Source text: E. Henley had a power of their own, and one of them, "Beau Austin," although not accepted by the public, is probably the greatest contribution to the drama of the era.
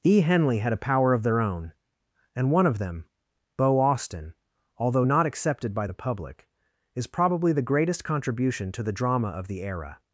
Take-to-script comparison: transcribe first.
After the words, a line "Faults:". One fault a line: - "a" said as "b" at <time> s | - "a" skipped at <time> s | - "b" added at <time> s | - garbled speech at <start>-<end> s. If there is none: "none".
E. Henley had a power of their own, and one of them, "Beau Austin," although not accepted by the public, is probably the greatest contribution to the drama of the era.
Faults:
none